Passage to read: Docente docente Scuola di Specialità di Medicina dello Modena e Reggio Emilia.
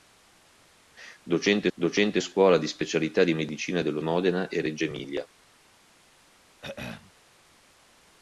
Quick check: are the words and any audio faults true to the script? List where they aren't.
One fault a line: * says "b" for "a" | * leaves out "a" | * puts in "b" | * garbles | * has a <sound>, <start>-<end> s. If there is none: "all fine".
* has a throat clearing, 6.6-7.1 s